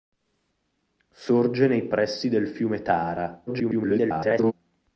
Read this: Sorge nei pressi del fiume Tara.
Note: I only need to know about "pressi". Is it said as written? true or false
true